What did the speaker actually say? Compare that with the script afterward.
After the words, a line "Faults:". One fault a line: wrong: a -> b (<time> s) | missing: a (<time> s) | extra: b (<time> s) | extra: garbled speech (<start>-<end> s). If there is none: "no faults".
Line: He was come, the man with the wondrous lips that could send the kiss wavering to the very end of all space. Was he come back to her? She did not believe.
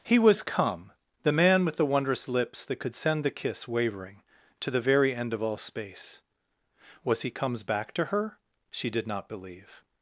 He was come, the man with the wondrous lips that could send the kiss wavering to the very end of all space. Was he comes back to her? She did not believe.
Faults:
wrong: come -> comes (7.3 s)